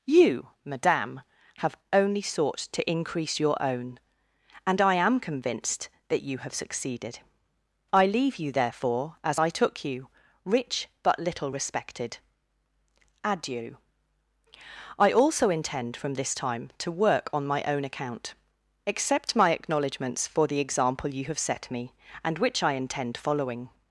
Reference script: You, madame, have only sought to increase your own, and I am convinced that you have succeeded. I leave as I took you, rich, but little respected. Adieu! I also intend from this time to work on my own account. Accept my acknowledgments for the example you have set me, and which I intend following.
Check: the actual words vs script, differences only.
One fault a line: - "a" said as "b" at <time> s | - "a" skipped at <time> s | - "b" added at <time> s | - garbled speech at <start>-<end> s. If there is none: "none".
- "you therefore" added at 8.4 s